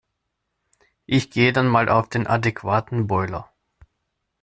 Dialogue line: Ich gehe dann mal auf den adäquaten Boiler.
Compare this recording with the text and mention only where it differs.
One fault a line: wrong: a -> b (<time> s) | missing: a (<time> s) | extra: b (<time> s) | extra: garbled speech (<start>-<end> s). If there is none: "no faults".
no faults